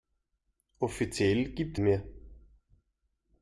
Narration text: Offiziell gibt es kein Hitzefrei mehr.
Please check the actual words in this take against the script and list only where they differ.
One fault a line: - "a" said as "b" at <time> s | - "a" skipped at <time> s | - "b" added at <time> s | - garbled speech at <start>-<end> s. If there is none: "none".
- "es kein Hitzefrei" skipped at 1.8 s